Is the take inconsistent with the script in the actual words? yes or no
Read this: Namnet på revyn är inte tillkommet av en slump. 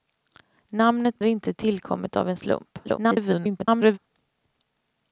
yes